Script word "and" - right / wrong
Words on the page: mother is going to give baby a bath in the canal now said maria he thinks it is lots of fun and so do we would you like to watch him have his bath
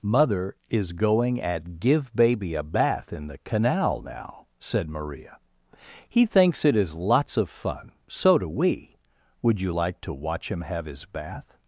wrong